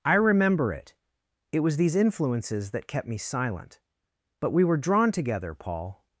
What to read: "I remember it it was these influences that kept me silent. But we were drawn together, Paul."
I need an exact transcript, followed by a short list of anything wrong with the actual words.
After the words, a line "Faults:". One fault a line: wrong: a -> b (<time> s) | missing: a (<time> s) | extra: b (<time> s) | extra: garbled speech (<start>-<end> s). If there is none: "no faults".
"I remember it it was these influences that kept me silent. But we were drawn together, Paul."
Faults:
no faults